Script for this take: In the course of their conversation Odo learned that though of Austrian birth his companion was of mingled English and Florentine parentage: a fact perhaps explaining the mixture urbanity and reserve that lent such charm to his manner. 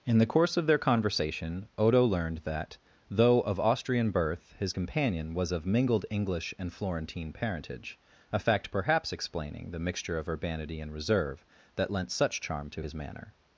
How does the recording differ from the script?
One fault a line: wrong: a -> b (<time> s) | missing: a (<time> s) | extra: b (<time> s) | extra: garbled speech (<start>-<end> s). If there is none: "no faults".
extra: of (10.2 s)